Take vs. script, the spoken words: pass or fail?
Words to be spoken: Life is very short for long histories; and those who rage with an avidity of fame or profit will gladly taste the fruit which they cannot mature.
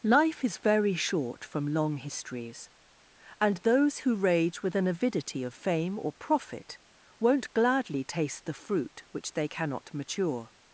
fail